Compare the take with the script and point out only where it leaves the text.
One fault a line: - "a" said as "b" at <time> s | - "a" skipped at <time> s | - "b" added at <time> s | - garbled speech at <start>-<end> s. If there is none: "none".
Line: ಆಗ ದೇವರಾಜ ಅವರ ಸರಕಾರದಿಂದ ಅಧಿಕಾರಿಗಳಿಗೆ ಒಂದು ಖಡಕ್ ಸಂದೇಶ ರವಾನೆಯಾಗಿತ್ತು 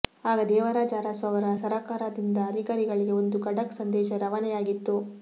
- "ಅರಸು" added at 1.0 s